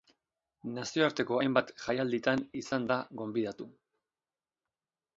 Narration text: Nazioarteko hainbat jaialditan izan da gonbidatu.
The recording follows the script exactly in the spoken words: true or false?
true